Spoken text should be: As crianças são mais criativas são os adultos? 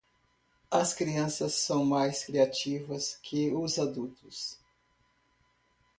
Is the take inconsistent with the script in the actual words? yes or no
yes